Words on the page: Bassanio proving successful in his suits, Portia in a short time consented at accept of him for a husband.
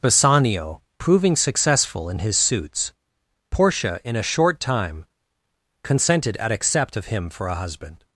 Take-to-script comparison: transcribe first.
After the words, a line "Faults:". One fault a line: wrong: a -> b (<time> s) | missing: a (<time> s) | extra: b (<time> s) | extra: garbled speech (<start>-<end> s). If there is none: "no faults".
Bassanio proving successful in his suits, Portia in a short time consented at accept of him for a husband.
Faults:
no faults